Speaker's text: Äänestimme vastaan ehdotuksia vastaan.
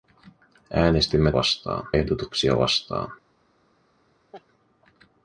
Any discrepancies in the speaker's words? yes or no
no